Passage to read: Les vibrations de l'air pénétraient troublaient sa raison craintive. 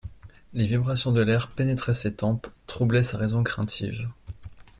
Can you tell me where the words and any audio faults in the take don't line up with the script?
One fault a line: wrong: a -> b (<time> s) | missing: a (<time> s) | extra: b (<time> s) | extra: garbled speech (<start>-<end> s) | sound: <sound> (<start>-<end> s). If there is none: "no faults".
extra: ses tempes (1.9 s)